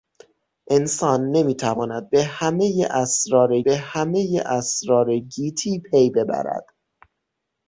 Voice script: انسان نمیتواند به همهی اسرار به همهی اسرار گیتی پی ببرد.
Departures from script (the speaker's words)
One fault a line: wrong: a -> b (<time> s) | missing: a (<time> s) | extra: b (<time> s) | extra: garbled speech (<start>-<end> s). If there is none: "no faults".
no faults